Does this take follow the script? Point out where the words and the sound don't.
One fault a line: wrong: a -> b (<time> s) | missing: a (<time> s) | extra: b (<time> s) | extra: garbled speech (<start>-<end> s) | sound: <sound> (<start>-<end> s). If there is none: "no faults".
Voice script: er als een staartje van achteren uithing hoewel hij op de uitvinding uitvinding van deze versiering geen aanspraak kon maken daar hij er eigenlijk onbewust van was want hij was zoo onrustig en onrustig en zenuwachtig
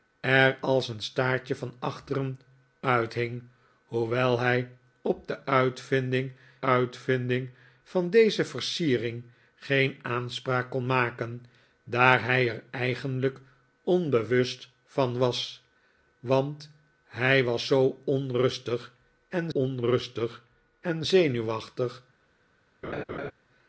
sound: laugh (22.8-23.3 s)